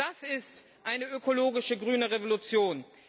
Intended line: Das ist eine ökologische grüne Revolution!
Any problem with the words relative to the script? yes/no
no